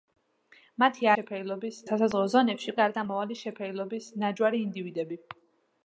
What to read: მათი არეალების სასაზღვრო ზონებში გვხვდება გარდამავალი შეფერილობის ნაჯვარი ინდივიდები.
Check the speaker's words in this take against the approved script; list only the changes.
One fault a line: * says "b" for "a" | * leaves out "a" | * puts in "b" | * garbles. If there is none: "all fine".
* says "შეფერილობის" for "არეალების"
* leaves out "გვხვდება"